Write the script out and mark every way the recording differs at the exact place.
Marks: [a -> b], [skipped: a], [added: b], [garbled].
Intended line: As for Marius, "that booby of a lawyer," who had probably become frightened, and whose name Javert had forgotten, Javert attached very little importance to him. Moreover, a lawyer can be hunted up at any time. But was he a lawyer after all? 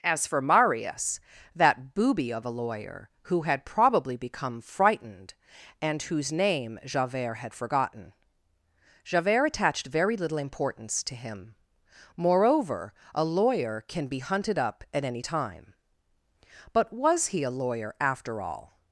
As for Marius, "that booby of a lawyer," who had probably become frightened, and whose name Javert had forgotten, Javert attached very little importance to him. Moreover, a lawyer can be hunted up at any time. But was he a lawyer after all?